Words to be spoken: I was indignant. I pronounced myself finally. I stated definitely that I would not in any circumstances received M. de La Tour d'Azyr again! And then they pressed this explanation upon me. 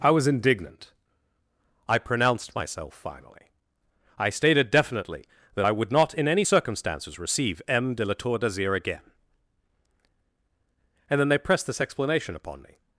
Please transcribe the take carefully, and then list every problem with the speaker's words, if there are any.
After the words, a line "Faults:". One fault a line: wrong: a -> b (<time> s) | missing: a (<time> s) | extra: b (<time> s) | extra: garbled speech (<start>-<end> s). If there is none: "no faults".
I was indignant. I pronounced myself finally. I stated definitely that I would not in any circumstances receive M. de La Tour d'Azyr again! And then they pressed this explanation upon me.
Faults:
wrong: received -> receive (7.2 s)